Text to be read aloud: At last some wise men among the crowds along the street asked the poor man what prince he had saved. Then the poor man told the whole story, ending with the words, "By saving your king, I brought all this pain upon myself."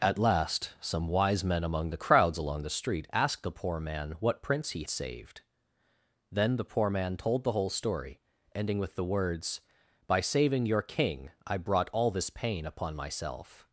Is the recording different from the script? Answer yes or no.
yes